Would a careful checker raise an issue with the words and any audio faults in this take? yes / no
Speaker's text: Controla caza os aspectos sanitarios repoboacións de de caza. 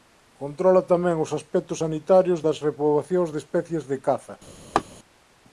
yes